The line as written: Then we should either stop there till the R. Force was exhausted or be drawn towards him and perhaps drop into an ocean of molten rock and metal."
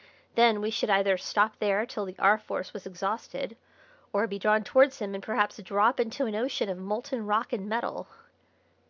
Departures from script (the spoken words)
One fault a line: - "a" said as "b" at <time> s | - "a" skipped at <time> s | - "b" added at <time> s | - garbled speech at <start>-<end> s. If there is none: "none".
none